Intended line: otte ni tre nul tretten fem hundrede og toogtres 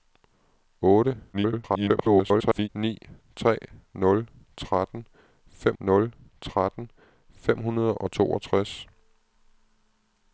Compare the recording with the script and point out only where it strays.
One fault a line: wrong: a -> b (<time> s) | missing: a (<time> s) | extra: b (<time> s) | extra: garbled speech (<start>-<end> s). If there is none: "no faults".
extra: garbled speech (1.3-2.7 s)
extra: nul tretten fem (5.8 s)